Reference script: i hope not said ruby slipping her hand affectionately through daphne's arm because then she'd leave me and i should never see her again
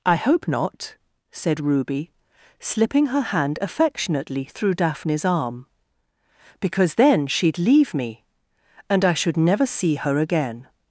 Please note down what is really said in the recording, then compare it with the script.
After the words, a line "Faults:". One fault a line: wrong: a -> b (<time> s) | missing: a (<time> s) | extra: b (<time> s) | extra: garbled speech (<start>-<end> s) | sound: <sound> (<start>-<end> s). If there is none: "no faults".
i hope not said ruby slipping her hand affectionately through daphne's arm because then she'd leave me and i should never see her again
Faults:
no faults